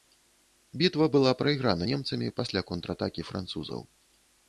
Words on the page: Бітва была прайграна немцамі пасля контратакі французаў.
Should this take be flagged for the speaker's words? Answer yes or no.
no